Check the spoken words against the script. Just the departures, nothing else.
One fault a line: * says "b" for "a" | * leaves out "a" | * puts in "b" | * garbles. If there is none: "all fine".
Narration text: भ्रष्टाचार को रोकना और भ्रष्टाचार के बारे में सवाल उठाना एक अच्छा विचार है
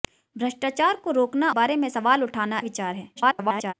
* leaves out "और भ्रष्टाचार के"
* leaves out "एक अच्छा"
* garbles